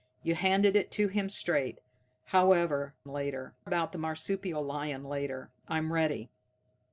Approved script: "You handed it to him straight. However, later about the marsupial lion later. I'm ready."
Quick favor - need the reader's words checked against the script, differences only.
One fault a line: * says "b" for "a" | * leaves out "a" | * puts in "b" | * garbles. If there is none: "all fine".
all fine